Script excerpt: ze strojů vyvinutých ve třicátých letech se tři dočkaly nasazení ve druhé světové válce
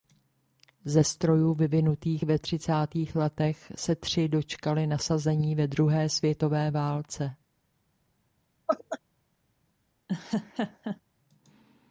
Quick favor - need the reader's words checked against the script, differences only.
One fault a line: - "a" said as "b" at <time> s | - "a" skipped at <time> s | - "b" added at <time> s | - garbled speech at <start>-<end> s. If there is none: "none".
none